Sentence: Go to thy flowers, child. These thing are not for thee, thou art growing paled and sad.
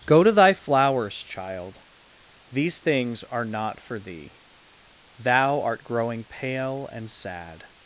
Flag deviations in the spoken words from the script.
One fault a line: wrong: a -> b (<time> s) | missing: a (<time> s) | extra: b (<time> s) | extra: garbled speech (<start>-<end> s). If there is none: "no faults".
wrong: thing -> things (2.8 s)
wrong: paled -> pale (6.2 s)